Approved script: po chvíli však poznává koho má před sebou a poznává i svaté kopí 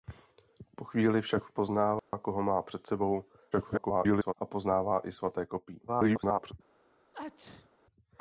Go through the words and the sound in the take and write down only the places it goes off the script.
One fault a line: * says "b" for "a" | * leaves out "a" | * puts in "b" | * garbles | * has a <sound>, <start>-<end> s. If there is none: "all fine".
* has a dropout, 2.0-2.1 s
* garbles
* garbles
* has a sneeze, 7.1-7.7 s